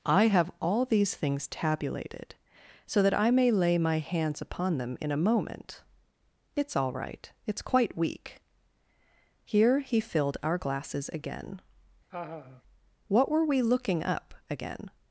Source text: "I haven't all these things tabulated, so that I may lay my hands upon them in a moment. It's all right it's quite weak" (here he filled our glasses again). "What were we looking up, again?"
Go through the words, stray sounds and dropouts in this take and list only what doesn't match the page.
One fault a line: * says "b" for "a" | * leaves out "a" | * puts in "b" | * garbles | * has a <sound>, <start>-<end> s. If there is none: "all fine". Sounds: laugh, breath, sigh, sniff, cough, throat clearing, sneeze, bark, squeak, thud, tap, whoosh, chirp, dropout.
* says "have" for "haven't"
* has a laugh, 12.1-12.6 s